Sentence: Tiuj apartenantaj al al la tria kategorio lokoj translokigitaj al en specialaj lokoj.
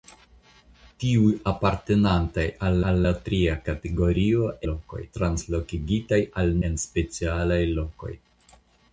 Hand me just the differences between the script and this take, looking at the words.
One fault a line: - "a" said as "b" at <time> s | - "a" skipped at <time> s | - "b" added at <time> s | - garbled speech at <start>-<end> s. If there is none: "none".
none